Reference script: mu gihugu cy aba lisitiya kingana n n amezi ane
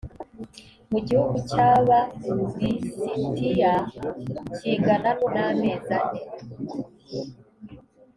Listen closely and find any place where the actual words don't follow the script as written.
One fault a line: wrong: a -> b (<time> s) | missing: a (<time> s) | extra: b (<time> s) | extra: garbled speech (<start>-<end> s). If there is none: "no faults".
no faults